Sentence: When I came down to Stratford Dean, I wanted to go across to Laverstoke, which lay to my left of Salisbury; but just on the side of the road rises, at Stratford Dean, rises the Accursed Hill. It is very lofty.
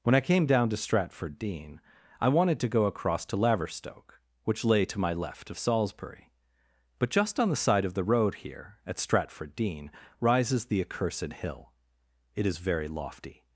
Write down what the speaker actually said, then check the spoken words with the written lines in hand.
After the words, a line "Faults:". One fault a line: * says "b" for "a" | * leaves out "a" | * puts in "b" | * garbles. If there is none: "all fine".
When I came down to Stratford Dean, I wanted to go across to Laverstoke, which lay to my left of Salisbury; but just on the side of the road here, at Stratford Dean, rises the Accursed Hill. It is very lofty.
Faults:
* says "here" for "rises"